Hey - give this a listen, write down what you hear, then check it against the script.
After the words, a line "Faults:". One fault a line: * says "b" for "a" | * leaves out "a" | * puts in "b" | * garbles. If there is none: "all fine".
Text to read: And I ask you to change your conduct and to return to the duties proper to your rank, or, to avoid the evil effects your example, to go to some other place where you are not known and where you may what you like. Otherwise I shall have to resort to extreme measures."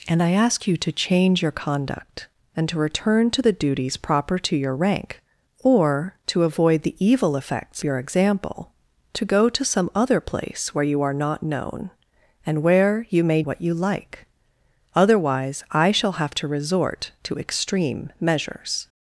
And I ask you to change your conduct and to return to the duties proper to your rank, or, to avoid the evil effects your example, to go to some other place where you are not known and where you may what you like. Otherwise I shall have to resort to extreme measures."
Faults:
all fine